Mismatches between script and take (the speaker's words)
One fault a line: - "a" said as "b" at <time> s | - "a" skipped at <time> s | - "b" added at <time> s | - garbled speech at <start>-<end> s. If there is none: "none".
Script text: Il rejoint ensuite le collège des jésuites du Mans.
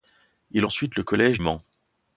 - "rejoint" skipped at 0.7 s
- "des jésuites du" skipped at 1.4 s